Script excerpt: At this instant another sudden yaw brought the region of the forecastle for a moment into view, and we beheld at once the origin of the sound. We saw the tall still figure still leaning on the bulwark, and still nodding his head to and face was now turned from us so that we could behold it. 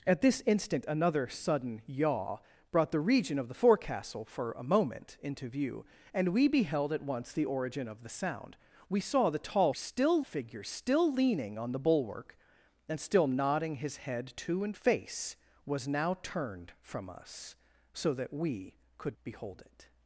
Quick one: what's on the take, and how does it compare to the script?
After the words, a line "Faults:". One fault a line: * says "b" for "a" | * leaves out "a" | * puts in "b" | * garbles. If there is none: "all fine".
At this instant another sudden yaw brought the region of the forecastle for a moment into view, and we beheld at once the origin of the sound. We saw the tall still figure still leaning on the bulwark, and still nodding his head to and face was now turned from us so that we could behold it.
Faults:
all fine